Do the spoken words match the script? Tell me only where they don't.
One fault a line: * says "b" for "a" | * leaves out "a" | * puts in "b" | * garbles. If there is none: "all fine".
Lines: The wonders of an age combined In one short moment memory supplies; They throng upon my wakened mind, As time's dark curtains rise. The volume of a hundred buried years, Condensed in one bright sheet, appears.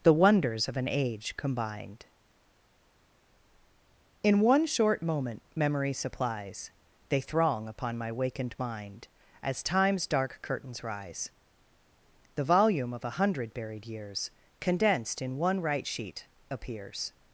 * says "right" for "bright"